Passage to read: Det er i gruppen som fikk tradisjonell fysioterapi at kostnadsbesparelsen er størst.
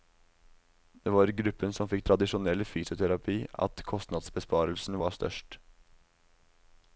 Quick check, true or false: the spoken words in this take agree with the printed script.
false